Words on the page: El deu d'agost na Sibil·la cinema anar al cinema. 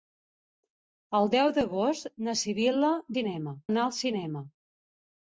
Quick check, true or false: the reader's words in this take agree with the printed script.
true